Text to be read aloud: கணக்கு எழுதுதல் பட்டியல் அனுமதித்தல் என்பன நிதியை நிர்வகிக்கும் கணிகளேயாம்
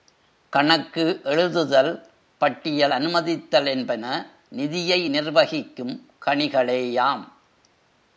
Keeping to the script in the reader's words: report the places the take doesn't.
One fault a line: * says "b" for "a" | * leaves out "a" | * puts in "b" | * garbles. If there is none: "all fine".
all fine